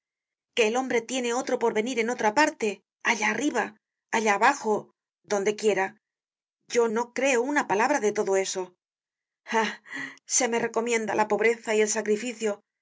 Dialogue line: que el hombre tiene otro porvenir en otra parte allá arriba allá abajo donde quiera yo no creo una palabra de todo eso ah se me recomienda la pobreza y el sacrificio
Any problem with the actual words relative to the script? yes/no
no